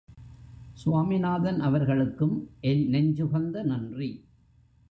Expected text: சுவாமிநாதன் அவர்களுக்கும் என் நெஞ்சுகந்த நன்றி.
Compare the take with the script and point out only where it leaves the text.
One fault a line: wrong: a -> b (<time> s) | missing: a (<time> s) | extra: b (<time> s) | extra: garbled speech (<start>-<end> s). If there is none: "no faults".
no faults